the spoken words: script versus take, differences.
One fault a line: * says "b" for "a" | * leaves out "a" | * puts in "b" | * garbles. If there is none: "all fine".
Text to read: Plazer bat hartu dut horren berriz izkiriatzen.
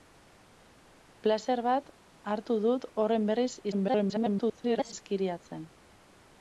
* garbles